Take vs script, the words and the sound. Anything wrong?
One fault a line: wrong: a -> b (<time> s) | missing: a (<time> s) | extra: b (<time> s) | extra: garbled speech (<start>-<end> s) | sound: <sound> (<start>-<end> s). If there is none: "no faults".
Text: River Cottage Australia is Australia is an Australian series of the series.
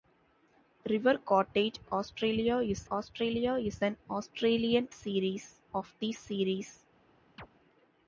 sound: chirp (7.4-7.5 s)